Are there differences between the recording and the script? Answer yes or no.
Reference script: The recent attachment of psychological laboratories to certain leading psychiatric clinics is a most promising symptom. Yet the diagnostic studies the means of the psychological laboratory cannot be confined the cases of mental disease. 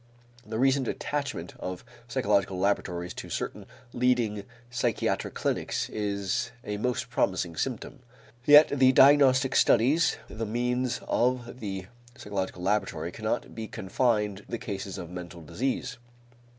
no